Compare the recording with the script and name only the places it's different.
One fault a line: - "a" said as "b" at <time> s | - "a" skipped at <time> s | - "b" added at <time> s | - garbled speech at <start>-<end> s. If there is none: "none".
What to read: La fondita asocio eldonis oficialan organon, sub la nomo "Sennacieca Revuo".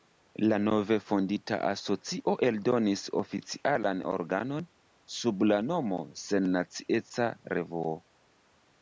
- "nove" added at 0.7 s